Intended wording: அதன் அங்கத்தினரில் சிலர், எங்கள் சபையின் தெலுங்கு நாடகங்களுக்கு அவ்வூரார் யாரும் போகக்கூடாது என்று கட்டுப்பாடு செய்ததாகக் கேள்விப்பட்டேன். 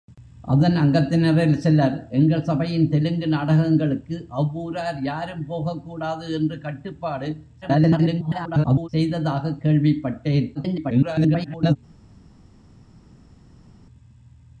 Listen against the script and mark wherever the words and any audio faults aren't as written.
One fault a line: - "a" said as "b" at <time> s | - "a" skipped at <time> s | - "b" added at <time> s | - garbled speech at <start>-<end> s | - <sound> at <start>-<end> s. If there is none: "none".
- garbled speech at 7.6-8.9 s
- garbled speech at 10.5-11.8 s